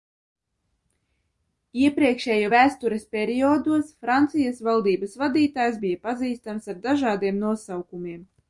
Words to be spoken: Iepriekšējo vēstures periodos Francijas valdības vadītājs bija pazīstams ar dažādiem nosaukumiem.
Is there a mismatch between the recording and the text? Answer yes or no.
no